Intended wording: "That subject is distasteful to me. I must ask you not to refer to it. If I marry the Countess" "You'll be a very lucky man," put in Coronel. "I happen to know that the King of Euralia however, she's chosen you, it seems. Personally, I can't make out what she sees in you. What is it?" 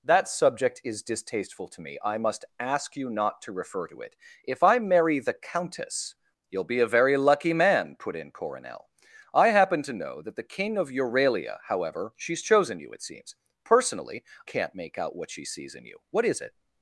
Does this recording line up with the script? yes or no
no